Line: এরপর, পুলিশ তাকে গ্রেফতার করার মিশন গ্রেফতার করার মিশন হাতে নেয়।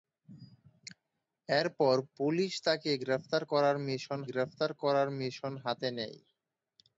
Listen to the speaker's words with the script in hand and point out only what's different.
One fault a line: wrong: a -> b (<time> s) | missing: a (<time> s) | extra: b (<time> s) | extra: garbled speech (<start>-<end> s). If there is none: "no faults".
no faults